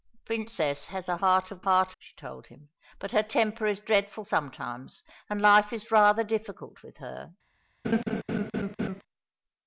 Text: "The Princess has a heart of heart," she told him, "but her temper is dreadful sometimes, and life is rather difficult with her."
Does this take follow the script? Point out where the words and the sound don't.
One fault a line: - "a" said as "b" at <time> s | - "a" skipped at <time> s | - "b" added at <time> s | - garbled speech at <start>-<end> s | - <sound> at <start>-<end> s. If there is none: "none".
- laugh at 7.8-9.0 s